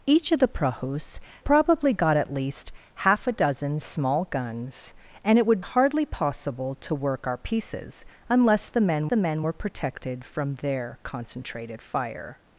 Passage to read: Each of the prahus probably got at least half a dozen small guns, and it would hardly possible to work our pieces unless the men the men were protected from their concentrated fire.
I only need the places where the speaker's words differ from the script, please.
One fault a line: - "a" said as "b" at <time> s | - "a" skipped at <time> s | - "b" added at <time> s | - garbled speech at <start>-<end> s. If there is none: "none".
none